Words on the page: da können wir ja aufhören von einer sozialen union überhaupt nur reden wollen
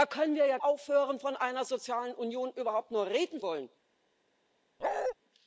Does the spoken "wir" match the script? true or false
true